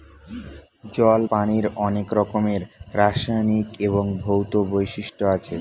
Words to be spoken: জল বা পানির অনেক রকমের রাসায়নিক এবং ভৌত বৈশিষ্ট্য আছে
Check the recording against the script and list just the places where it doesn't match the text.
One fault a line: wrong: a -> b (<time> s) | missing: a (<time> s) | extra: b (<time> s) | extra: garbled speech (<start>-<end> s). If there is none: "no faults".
missing: বা (1.2 s)